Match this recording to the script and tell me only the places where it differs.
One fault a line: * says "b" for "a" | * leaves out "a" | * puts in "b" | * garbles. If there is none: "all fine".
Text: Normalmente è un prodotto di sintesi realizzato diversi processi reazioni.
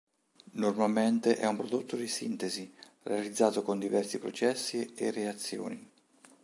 * puts in "con"
* puts in "e"